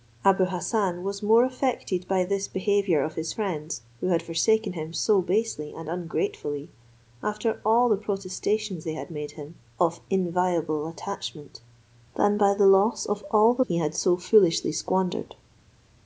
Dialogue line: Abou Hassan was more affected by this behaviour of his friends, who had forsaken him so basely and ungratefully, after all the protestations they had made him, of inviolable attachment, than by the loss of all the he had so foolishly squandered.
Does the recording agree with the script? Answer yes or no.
yes